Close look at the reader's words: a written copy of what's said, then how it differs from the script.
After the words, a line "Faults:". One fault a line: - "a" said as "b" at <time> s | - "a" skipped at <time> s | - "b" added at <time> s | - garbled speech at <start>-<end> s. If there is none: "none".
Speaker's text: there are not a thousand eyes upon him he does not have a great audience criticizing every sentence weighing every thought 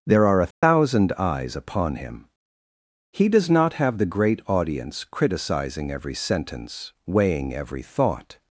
there are a thousand eyes upon him he does not have the great audience criticizing every sentence weighing every thought
Faults:
- "not" skipped at 0.4 s
- "a" said as "the" at 4.0 s